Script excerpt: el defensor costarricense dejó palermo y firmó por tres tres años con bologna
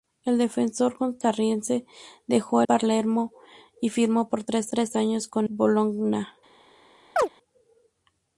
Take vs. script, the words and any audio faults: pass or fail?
fail